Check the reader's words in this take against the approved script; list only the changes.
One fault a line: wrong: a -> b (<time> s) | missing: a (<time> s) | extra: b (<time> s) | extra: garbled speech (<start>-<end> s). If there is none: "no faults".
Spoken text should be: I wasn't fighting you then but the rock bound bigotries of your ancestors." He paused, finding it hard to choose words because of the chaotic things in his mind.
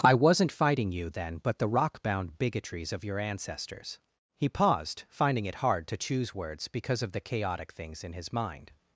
no faults